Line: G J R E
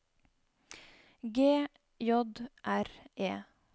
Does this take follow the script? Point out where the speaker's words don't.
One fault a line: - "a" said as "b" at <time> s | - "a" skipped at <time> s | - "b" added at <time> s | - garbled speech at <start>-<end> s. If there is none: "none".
none